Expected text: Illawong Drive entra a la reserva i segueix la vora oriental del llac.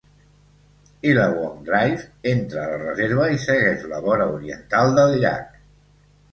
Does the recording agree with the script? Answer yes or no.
yes